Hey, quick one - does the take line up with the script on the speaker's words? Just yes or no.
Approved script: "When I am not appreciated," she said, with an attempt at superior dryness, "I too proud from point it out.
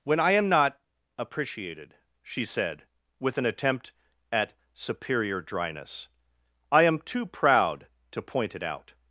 no